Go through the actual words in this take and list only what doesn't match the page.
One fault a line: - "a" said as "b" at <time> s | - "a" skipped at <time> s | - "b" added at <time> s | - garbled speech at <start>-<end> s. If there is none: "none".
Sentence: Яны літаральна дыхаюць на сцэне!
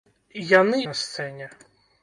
- "літаральна дыхаюць" skipped at 0.8 s